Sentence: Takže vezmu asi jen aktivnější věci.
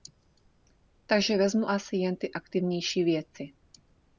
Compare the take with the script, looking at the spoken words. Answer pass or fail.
fail